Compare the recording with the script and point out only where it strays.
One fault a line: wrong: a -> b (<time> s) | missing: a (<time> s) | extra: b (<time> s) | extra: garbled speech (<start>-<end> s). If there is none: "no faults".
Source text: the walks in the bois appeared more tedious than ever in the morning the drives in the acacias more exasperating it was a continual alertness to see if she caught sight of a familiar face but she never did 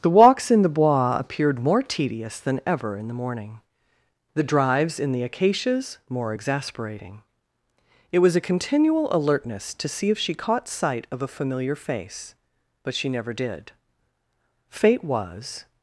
extra: fate was (14.7 s)